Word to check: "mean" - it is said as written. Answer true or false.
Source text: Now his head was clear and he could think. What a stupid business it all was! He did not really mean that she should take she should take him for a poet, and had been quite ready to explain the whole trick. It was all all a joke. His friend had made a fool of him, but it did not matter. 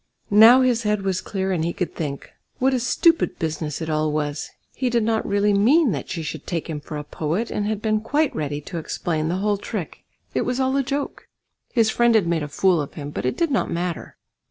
true